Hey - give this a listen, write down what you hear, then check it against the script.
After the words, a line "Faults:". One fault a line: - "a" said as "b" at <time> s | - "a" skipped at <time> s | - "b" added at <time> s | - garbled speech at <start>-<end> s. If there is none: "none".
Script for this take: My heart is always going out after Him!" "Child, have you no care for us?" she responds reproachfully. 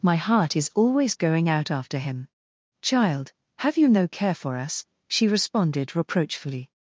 My heart is always going out after Him!" "Child, have you no care for us?" she responded reproachfully.
Faults:
- "responds" said as "responded" at 5.3 s